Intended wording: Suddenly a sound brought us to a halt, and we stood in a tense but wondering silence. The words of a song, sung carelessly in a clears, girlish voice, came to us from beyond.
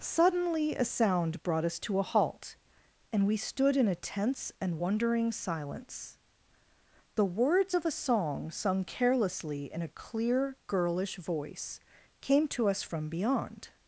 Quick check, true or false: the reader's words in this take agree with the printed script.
false